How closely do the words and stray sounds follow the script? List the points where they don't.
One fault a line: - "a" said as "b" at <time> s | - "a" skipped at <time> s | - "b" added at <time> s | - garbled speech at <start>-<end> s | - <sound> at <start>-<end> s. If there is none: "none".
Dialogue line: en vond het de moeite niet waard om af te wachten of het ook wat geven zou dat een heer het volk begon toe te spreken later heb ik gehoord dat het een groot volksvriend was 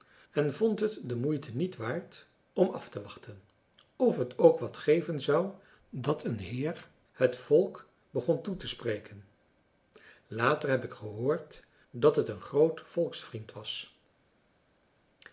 none